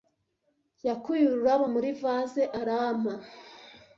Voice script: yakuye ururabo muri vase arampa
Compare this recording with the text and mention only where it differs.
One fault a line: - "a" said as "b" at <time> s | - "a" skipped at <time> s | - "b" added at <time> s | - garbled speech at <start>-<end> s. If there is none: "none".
none